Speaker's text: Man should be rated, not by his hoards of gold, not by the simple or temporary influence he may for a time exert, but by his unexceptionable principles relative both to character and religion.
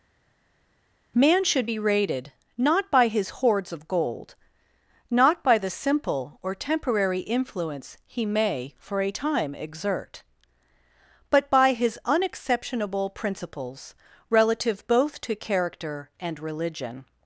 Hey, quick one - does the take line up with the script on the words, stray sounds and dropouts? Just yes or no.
yes